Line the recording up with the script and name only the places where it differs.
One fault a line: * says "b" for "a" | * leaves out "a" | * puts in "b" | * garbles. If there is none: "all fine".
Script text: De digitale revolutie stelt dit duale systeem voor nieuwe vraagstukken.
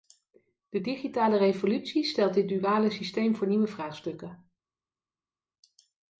all fine